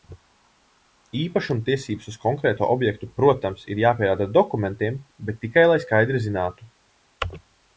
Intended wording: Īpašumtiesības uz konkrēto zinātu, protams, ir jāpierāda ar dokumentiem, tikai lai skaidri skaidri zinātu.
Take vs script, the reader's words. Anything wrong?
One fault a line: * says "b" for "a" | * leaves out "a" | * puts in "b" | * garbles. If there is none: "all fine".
* says "objektu" for "zinātu"
* puts in "bet"
* leaves out "skaidri"